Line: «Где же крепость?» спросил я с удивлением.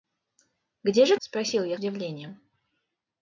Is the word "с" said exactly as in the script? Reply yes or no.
no